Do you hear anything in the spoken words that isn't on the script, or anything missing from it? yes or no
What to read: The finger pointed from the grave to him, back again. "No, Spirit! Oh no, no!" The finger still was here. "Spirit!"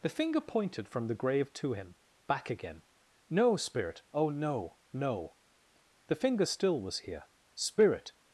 no